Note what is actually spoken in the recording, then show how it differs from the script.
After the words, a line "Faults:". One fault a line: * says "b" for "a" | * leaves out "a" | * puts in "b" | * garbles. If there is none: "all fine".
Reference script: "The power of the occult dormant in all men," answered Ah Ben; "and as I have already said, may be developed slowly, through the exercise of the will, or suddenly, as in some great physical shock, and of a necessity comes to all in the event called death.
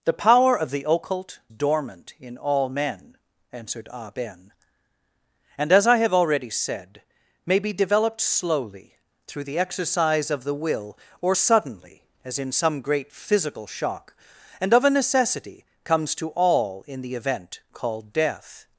"The power of the occult dormant in all men," answered Ah Ben; "and as I have already said, may be developed slowly, through the exercise of the will, or suddenly, as in some great physical shock, and of a necessity comes to all in the event called death.
Faults:
all fine